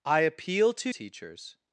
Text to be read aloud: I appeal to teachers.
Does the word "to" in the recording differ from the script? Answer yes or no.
no